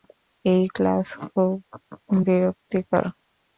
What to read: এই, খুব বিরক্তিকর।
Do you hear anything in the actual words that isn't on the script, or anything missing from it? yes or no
yes